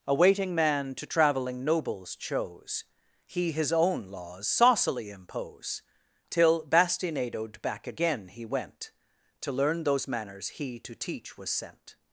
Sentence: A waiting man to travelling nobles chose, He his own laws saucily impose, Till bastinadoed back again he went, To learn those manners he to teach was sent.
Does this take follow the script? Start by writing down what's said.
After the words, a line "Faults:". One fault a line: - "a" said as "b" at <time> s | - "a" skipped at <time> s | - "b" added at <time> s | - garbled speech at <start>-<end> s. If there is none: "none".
A waiting man to travelling nobles chose, He his own laws saucily impose, Till bastinadoed back again he went, To learn those manners he to teach was sent.
Faults:
none